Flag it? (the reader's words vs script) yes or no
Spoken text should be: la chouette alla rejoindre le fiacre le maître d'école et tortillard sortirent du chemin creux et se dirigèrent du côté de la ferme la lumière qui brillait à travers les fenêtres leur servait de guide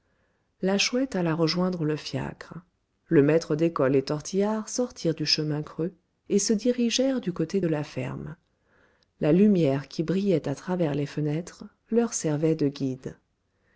no